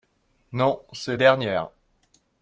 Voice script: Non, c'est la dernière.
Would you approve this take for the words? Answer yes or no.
no